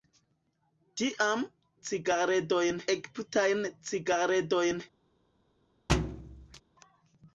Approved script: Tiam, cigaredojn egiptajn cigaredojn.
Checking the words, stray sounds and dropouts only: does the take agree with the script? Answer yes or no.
no